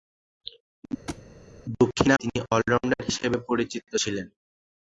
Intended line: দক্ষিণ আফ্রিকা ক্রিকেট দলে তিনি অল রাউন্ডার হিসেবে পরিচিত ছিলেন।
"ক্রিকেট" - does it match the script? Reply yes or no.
no